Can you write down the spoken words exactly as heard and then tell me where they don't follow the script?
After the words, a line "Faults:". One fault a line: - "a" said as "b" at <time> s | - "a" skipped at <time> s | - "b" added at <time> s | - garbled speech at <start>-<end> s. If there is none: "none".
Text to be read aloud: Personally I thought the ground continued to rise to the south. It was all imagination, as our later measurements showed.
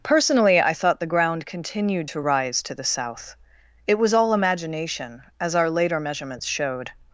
Personally I thought the ground continued to rise to the south. It was all imagination, as our later measurements showed.
Faults:
none